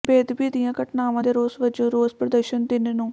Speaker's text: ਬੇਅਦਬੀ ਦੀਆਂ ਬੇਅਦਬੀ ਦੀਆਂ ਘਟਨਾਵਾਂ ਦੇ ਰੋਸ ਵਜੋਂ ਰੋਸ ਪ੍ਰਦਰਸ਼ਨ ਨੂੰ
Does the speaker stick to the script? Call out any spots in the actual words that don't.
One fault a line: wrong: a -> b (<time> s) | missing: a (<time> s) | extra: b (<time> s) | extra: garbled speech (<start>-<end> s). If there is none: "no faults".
missing: ਬੇਅਦਬੀ ਦੀਆਂ (0.7 s)
extra: ਤਿੰਨ (2.7 s)